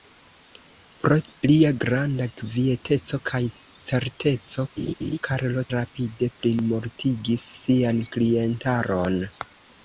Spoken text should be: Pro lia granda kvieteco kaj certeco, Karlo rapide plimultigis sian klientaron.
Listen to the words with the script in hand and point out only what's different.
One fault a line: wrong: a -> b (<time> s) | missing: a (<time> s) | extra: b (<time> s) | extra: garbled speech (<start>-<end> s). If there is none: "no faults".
no faults